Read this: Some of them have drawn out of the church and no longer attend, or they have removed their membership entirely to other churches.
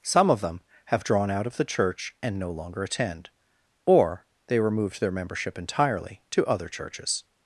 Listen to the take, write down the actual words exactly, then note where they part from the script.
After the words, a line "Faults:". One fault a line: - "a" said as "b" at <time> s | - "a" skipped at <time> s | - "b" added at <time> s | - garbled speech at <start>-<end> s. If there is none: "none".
Some of them have drawn out of the church and no longer attend, or they removed their membership entirely to other churches.
Faults:
- "have" skipped at 4.6 s